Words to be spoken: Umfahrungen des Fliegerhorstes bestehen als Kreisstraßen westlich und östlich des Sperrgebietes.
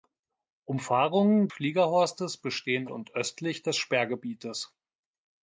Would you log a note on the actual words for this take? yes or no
yes